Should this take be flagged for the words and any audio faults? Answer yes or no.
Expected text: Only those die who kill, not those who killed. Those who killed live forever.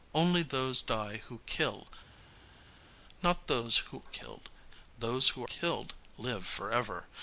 no